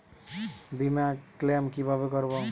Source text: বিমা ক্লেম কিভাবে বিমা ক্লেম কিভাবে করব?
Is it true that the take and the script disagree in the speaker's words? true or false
true